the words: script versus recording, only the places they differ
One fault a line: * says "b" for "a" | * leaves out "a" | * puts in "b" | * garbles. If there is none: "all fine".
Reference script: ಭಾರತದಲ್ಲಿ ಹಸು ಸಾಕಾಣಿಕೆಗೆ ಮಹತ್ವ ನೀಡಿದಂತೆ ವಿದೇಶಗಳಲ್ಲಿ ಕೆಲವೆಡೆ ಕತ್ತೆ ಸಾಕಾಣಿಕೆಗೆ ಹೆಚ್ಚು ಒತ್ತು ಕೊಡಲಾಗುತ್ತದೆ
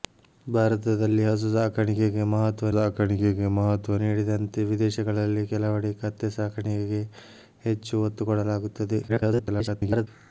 * puts in "ಸಾಕಾಣಿಕೆಗೆ ಮಹತ್ವ"
* garbles